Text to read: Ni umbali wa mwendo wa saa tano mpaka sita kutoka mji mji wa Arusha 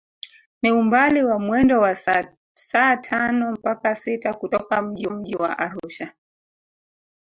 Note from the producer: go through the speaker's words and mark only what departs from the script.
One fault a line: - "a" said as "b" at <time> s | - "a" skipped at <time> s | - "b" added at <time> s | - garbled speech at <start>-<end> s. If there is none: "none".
none